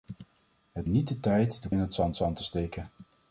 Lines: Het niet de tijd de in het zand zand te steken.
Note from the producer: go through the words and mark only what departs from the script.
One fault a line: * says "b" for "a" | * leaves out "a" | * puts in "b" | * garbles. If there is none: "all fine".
all fine